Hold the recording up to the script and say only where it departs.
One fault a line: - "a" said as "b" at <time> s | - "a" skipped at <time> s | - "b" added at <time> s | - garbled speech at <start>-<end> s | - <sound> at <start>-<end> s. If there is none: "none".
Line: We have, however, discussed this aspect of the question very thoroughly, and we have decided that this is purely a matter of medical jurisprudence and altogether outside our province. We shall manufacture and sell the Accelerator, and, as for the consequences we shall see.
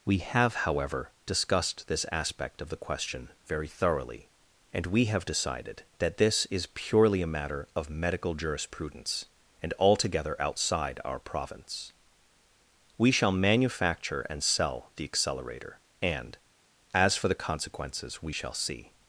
none